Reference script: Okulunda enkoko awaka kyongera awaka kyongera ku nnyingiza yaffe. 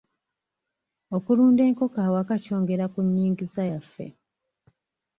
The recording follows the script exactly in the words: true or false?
false